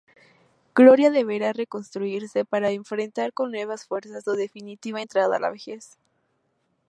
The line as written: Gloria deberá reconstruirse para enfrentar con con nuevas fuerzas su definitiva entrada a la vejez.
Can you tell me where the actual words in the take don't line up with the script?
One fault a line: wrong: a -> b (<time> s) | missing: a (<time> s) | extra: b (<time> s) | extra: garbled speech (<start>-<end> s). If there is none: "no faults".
missing: con (3.5 s)